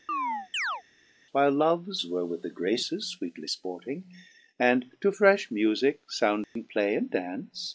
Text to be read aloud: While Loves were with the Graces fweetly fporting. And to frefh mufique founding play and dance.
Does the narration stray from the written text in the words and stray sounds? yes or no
yes